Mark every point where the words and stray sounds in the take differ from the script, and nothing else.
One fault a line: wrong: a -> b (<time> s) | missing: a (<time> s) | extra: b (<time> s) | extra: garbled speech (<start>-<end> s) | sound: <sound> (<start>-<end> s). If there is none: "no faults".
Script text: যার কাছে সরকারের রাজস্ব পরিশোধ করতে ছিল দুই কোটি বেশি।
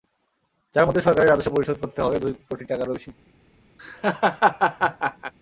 wrong: কাছে -> মধ্যে (0.9 s)
wrong: ছিল -> হবে (2.0 s)
extra: টাকারও (2.6 s)
sound: laugh (3.8-5.3 s)